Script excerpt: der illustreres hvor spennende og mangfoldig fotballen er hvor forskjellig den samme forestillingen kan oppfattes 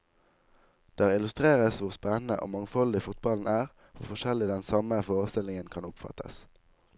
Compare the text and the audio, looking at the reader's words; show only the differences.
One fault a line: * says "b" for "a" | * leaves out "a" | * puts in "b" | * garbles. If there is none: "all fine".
all fine